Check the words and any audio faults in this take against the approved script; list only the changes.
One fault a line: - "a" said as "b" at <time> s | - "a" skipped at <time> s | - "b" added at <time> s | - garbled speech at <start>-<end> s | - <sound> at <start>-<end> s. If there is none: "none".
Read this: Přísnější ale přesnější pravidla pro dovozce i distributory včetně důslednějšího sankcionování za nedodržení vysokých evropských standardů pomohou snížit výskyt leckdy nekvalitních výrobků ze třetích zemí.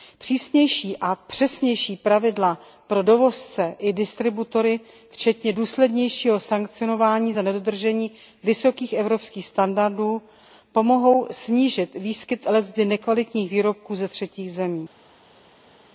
- "ale" said as "a" at 1.0 s